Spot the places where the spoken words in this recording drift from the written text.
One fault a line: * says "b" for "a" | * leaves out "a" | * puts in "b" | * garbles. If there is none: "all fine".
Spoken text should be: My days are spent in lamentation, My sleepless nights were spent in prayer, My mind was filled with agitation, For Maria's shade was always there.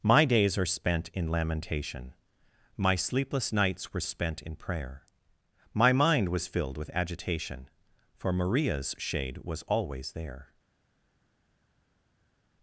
all fine